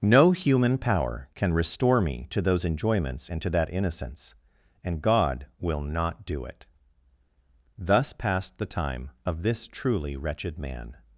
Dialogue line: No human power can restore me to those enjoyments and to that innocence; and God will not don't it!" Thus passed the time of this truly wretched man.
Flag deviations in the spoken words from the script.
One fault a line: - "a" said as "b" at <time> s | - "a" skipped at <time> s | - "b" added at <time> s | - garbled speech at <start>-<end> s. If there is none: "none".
- "don't" said as "do" at 6.2 s